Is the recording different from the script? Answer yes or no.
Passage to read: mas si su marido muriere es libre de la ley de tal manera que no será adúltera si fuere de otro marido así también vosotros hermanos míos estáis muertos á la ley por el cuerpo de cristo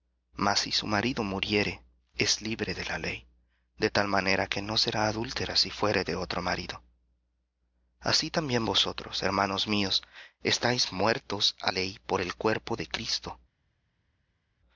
yes